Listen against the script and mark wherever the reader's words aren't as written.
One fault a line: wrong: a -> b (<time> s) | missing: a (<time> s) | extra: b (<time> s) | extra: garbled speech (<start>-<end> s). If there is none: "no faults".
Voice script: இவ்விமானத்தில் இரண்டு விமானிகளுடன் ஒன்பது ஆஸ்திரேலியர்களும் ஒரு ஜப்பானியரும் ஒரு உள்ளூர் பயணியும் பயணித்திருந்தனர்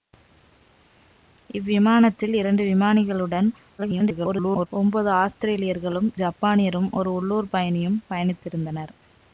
extra: garbled speech (3.8-4.7 s)
missing: ஒரு (6.1 s)